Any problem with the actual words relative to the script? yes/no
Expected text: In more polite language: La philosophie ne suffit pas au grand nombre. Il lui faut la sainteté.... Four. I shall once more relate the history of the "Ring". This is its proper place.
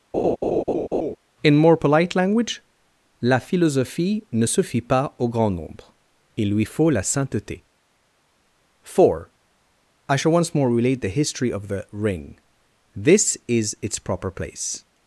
no